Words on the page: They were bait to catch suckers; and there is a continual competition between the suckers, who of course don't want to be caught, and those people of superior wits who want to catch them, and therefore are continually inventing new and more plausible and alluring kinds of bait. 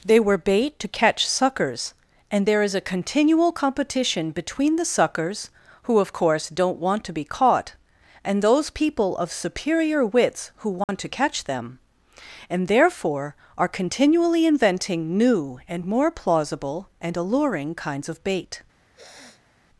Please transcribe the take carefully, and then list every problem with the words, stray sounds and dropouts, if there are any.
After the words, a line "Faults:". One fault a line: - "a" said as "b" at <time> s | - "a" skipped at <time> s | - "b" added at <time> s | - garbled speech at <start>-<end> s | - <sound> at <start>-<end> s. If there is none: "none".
They were bait to catch suckers; and there is a continual competition between the suckers, who of course don't want to be caught, and those people of superior wits who want to catch them, and therefore are continually inventing new and more plausible and alluring kinds of bait.
Faults:
- dropout at 10.8-10.9 s
- sniff at 18.9-19.5 s